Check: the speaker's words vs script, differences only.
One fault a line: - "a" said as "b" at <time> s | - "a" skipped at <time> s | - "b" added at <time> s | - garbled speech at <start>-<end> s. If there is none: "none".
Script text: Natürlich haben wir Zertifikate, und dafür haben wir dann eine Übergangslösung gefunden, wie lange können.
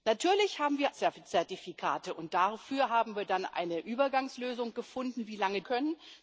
none